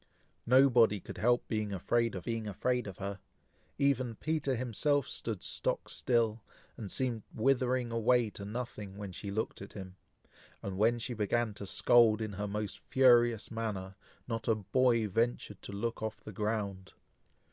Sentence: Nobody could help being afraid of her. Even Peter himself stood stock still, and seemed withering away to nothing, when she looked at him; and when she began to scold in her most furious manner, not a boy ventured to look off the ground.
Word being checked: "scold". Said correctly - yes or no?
yes